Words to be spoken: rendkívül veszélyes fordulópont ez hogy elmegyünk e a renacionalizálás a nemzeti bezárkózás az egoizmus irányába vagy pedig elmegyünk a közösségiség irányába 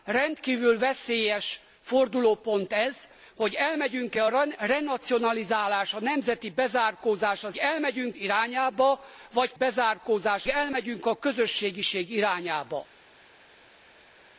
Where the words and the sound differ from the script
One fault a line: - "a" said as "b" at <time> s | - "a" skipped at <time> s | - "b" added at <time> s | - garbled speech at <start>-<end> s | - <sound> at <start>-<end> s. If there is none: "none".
- "egoizmus" said as "elmegyünk" at 7.6 s
- "pedig" said as "bezárkózás" at 9.5 s